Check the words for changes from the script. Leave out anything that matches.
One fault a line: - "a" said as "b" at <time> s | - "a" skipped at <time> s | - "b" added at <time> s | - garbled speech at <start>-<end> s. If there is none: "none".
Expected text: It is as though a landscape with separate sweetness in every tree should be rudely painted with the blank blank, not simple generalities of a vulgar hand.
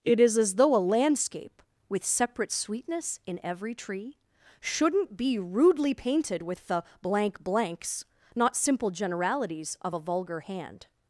- "should" said as "shouldn't" at 4.6 s
- "blank" said as "blanks" at 7.4 s